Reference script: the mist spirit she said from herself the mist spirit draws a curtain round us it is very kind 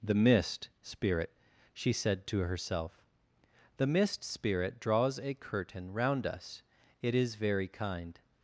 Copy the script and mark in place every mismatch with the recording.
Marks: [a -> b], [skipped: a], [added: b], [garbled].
the mist spirit she said [from -> to] herself the mist spirit draws a curtain round us it is very kind